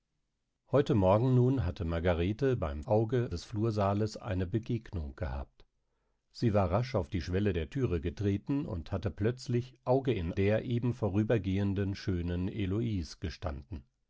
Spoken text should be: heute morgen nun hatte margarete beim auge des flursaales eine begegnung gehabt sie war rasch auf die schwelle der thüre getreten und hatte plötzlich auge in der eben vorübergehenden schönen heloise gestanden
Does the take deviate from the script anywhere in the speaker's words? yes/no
no